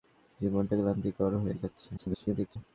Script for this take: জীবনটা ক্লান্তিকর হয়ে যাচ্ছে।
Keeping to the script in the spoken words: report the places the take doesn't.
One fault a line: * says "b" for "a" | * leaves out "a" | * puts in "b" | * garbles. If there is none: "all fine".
* garbles